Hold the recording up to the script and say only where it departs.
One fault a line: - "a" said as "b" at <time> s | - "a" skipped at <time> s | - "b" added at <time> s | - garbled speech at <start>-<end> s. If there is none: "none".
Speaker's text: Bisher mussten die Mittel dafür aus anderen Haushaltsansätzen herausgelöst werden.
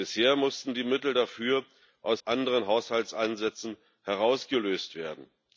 none